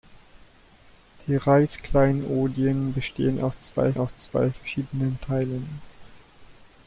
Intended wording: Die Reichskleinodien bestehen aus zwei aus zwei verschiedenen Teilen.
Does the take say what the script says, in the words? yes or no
yes